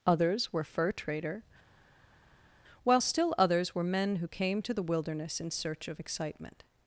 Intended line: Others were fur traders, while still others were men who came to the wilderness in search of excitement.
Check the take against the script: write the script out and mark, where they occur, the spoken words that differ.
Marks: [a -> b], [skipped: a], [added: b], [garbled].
Others were fur [traders, -> trader] while still others were men who came to the wilderness in search of excitement.